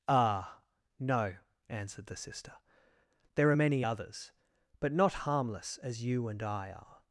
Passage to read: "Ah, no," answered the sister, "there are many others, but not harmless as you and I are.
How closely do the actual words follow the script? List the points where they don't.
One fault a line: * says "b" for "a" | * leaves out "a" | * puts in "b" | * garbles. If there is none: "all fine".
all fine